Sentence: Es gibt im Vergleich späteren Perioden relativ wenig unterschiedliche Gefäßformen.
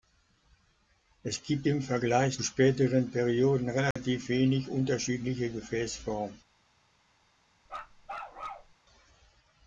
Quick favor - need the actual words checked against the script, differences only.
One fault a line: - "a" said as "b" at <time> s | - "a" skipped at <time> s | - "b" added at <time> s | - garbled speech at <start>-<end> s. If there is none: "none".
none